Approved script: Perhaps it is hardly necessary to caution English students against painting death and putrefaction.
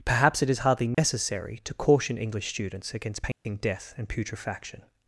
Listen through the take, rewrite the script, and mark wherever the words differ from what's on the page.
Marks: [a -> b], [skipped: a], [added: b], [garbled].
Perhaps it is hardly necessary to caution English students against painting death and putrefaction.